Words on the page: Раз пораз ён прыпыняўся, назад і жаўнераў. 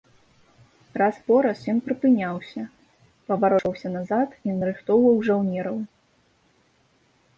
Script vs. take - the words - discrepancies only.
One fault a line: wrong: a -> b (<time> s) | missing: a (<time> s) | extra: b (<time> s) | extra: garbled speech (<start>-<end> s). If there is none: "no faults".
extra: паварочваўся (3.3 s)
extra: нарыхтоўваў (4.6 s)